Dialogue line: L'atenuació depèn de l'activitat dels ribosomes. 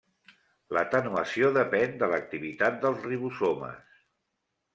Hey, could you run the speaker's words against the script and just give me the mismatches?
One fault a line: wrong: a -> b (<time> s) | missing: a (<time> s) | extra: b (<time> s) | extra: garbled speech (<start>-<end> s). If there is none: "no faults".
no faults